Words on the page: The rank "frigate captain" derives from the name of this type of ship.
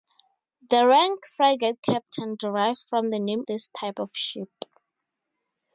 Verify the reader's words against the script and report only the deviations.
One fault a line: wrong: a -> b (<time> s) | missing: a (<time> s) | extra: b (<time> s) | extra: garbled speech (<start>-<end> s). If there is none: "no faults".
missing: of (3.4 s)